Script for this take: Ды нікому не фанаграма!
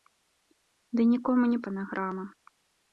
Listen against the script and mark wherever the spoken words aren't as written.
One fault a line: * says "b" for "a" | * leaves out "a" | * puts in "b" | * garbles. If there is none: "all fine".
all fine